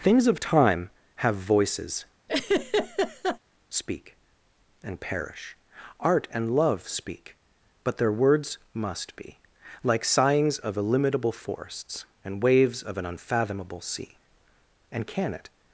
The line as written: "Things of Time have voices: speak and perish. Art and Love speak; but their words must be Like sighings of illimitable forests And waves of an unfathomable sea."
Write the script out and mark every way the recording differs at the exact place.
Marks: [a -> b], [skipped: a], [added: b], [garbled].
"Things of Time have voices: speak and perish. Art and Love speak; but their words must be Like sighings of illimitable forests And waves of an unfathomable sea." [added: And can it]